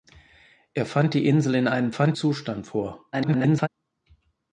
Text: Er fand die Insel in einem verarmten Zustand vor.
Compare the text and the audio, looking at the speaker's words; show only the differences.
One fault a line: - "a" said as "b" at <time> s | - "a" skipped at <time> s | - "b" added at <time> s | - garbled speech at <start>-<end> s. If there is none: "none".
- "verarmten" said as "fand" at 1.9 s
- garbled speech at 3.1-3.7 s